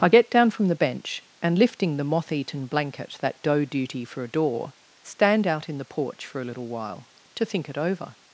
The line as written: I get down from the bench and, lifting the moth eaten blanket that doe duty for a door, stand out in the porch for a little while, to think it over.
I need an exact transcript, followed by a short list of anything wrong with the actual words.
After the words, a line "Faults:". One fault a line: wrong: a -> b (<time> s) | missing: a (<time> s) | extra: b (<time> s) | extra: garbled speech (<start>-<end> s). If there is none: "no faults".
I get down from the bench and, lifting the moth eaten blanket that doe duty for a door, stand out in the porch for a little while, to think it over.
Faults:
no faults